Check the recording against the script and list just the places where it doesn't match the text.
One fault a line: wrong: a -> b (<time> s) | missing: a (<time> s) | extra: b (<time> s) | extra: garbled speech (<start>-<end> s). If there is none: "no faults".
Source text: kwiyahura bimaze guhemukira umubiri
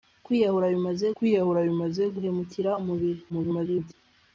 extra: kwiyahura bimaze (1.2 s)
extra: garbled speech (3.3-3.9 s)